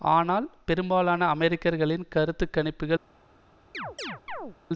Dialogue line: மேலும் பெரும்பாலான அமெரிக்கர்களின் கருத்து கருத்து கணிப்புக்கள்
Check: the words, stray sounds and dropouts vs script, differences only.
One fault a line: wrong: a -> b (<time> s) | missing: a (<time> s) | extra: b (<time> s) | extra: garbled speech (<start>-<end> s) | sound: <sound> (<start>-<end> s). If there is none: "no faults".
wrong: மேலும் -> ஆனால் (0.1 s)
missing: கருத்து (2.5 s)
sound: chirp (3.7-4.6 s)